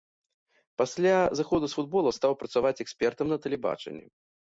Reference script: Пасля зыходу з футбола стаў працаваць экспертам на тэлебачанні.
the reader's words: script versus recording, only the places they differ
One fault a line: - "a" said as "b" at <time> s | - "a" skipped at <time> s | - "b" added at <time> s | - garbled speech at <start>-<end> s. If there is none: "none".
none